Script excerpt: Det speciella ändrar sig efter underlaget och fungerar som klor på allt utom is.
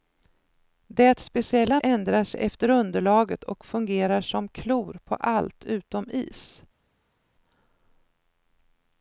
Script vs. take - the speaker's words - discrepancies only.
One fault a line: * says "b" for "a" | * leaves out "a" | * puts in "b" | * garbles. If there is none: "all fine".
all fine